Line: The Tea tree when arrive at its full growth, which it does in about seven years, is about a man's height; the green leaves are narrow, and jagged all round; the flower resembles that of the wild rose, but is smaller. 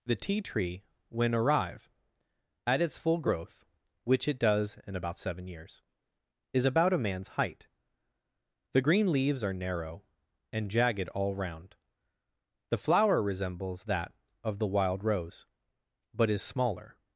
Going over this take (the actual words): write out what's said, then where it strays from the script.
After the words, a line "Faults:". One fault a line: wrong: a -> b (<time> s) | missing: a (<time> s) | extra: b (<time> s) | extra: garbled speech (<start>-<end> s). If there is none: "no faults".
The Tea tree when arrive at its full growth, which it does in about seven years, is about a man's height; the green leaves are narrow, and jagged all round; the flower resembles that of the wild rose, but is smaller.
Faults:
no faults